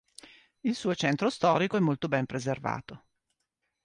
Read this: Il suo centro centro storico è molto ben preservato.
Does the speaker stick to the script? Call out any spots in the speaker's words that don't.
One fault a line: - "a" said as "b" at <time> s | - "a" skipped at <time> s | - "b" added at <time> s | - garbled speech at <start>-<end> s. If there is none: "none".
- "centro" skipped at 1.3 s